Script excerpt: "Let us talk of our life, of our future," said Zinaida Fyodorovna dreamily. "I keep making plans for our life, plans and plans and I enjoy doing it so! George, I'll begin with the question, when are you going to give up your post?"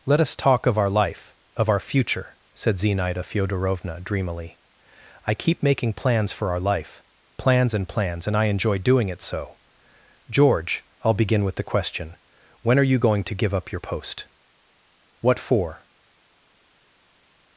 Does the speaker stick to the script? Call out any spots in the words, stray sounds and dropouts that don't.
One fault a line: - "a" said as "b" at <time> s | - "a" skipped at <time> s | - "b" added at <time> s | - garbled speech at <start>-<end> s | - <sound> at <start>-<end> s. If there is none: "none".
- "What for" added at 15.2 s